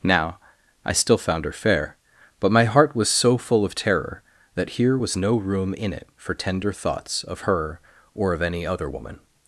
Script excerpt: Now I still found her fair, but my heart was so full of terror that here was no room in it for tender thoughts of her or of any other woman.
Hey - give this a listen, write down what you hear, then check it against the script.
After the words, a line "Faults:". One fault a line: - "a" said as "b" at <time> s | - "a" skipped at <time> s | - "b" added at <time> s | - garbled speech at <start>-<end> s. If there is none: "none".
Now I still found her fair, but my heart was so full of terror that here was no room in it for tender thoughts of her or of any other woman.
Faults:
none